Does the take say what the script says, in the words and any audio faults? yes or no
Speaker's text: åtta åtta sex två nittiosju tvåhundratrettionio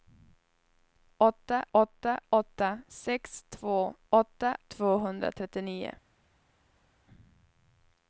no